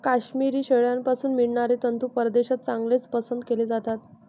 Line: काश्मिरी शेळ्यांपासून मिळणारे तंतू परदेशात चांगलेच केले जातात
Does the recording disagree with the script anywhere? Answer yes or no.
yes